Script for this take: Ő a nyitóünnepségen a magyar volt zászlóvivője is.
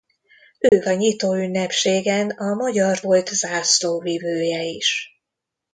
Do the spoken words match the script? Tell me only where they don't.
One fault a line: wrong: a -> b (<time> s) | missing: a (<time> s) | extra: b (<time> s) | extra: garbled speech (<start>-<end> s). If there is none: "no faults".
no faults